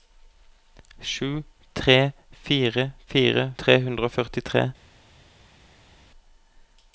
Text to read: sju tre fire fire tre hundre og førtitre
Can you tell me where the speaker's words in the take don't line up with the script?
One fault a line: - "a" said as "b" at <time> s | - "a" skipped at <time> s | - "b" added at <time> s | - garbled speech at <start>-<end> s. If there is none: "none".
none